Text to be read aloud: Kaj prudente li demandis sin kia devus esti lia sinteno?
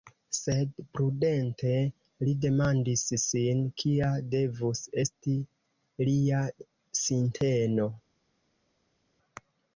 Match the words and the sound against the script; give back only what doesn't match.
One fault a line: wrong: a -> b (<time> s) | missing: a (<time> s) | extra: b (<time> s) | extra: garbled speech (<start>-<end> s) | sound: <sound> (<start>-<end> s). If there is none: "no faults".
wrong: Kaj -> Sed (0.3 s)